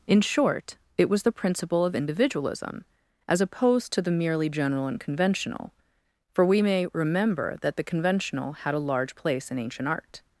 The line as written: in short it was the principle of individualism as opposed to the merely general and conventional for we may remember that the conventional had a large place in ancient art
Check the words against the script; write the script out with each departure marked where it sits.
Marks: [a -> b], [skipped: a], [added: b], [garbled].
in short it was the principle of individualism as opposed to the merely general and conventional for we may remember that the conventional had a large place in ancient art